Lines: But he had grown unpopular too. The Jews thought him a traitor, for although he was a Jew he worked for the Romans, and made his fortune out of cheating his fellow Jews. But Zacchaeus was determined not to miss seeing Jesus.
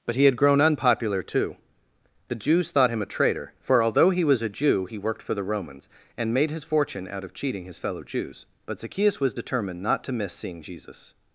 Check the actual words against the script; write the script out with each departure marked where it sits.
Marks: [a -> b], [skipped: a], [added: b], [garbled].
But he had grown unpopular too. The Jews thought him a traitor, for although he was a Jew he worked for the Romans, and made his fortune out of cheating his fellow Jews. But Zacchaeus was determined not to miss seeing Jesus.